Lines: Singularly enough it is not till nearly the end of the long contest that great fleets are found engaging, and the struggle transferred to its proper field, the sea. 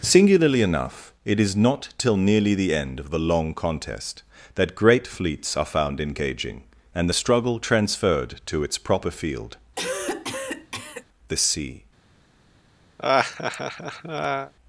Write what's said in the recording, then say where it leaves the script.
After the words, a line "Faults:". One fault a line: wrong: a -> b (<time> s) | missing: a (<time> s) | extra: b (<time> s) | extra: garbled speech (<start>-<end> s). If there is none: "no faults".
Singularly enough it is not till nearly the end of the long contest that great fleets are found engaging, and the struggle transferred to its proper field, the sea.
Faults:
no faults